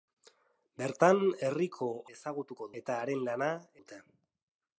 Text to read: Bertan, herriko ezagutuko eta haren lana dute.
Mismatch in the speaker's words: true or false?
false